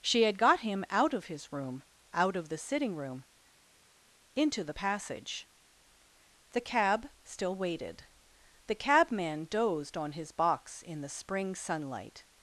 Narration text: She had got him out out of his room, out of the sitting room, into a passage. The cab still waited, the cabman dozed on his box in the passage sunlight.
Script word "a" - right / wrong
wrong